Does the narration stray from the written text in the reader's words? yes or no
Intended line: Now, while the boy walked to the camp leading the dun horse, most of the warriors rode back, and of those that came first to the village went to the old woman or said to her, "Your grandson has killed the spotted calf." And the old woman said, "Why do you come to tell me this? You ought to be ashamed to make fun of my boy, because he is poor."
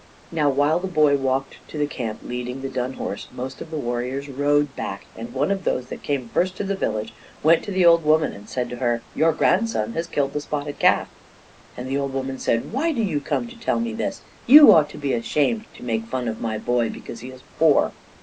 yes